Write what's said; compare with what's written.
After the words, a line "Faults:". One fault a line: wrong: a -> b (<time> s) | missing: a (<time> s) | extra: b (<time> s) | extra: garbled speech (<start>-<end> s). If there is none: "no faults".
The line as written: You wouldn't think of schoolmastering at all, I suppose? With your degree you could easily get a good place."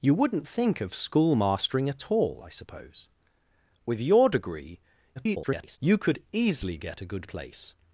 You wouldn't think of schoolmastering at all, I suppose? With your degree [garbled] you could easily get a good place."
Faults:
extra: garbled speech (5.2-5.8 s)